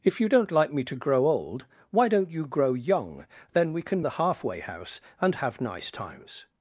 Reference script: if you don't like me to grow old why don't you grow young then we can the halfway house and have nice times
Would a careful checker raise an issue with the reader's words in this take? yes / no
no